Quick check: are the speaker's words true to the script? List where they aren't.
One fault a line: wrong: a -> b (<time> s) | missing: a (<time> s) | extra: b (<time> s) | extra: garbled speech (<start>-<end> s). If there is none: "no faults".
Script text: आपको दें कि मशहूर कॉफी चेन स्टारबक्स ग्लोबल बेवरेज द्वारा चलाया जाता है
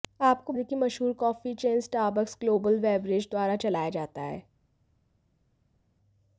no faults